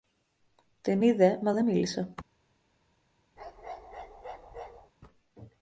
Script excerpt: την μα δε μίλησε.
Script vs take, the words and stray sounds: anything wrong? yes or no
yes